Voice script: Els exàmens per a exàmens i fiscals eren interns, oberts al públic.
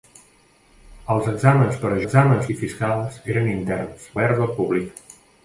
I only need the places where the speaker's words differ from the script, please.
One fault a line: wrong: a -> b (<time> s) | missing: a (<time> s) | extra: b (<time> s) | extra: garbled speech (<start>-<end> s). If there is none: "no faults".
no faults